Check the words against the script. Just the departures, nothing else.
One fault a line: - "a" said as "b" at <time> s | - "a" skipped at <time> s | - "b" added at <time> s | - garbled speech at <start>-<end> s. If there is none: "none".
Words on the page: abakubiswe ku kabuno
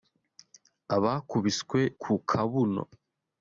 none